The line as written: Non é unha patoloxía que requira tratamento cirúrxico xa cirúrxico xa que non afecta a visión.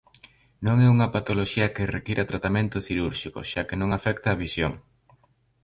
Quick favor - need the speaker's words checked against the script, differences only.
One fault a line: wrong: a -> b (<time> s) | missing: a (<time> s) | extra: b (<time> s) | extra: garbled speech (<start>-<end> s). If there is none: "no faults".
missing: cirúrxico xa (3.6 s)